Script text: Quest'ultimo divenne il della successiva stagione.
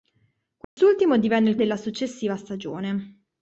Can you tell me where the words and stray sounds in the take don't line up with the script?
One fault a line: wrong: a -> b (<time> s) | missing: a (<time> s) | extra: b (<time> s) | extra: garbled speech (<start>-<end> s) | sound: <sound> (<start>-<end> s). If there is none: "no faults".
sound: dropout (0.6-0.8 s)